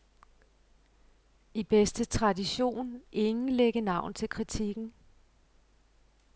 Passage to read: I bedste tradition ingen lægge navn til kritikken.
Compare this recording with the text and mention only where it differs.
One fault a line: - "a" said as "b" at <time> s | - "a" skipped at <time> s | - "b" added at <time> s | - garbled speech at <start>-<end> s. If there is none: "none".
none